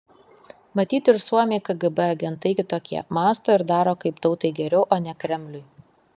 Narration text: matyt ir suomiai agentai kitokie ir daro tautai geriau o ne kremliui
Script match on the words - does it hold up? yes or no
no